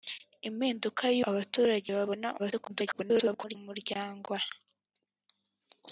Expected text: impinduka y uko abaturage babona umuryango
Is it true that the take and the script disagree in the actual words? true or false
true